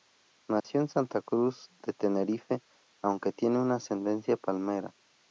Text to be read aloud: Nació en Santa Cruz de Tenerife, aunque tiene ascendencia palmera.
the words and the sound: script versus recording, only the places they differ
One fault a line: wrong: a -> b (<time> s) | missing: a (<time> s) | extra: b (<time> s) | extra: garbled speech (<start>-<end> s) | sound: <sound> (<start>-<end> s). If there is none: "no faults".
sound: dropout (0.6-0.6 s)